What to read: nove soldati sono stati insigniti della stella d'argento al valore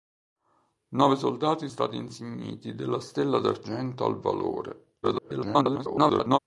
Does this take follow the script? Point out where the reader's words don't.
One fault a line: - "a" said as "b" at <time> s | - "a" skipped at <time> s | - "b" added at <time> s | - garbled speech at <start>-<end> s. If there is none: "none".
- "sono" skipped at 1.7 s
- garbled speech at 5.0-6.4 s